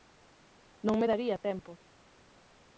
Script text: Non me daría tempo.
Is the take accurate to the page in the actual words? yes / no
yes